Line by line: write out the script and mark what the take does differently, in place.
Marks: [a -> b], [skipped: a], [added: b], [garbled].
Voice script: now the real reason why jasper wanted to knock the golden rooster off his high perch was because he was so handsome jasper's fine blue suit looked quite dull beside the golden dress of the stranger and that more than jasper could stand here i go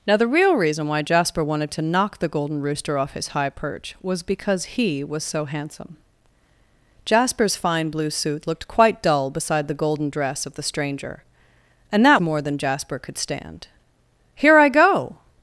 now the real reason why jasper wanted to knock the golden rooster off his high perch was because he was so handsome jasper's fine blue suit looked quite dull beside the golden dress of the stranger and that more than jasper could stand here i go